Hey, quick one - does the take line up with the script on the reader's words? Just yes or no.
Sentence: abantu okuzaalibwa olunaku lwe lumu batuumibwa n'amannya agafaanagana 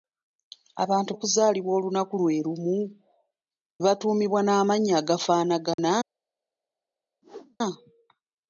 yes